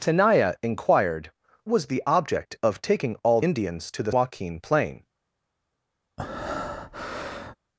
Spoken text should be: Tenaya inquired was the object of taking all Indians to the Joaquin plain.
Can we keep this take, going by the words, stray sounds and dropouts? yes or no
no